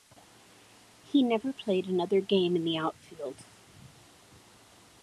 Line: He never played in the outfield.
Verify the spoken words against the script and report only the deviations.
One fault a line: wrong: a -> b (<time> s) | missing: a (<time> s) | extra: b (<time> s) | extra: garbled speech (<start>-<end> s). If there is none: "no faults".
extra: another game (1.9 s)